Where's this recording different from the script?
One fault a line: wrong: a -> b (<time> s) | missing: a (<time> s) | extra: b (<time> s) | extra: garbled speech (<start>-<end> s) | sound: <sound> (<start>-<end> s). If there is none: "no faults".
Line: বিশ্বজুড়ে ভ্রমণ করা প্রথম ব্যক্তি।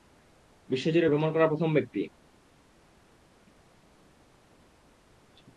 no faults